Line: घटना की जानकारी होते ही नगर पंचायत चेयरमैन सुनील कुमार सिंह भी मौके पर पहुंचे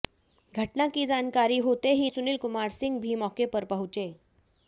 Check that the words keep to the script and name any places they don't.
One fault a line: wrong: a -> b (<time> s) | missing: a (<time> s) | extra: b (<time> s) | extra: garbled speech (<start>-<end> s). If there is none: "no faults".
missing: नगर पंचायत चेयरमैन (2.1 s)